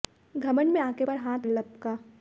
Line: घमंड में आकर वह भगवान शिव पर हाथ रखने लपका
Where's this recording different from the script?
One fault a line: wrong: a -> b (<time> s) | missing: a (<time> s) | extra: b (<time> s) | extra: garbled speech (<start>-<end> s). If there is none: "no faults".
missing: वह भगवान शिव (1.1 s)
missing: रखने (1.5 s)